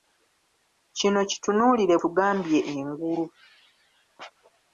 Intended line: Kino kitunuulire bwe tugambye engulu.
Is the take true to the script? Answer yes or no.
no